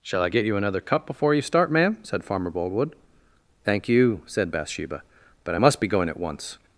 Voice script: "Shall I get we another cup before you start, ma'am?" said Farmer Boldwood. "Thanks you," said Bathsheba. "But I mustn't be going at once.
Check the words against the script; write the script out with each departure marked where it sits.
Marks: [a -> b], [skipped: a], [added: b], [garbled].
"Shall I get [we -> you] another cup before you start, ma'am?" said Farmer Boldwood. ["Thanks -> Thank] you," said Bathsheba. "But I [mustn't -> must] be going at once.